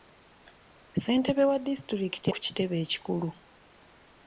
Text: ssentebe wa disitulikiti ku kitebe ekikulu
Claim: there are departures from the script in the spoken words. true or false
false